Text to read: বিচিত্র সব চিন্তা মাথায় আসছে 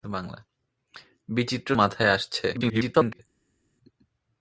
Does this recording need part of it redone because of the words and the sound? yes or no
yes